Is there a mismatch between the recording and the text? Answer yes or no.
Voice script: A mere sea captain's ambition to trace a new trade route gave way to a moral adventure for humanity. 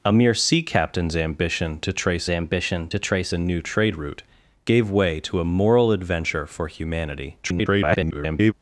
yes